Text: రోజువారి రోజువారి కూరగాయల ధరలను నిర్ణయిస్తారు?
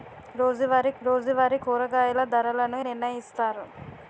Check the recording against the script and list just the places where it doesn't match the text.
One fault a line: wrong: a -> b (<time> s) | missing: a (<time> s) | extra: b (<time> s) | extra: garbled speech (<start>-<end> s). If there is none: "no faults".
no faults